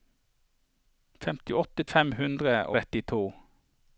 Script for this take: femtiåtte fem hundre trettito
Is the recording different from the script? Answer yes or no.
no